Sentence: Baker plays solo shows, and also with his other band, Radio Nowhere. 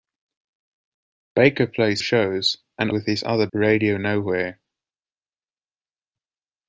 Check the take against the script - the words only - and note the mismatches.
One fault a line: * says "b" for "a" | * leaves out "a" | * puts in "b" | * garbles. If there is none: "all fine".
* leaves out "solo"
* leaves out "also"
* leaves out "band"